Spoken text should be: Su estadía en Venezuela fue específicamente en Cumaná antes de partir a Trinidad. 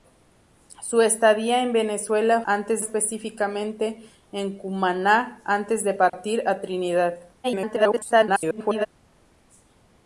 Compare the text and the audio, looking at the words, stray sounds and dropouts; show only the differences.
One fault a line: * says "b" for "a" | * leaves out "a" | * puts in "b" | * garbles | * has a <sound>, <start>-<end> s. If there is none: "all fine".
* says "antes" for "fue"
* has a dropout, 6.1-6.1 s
* garbles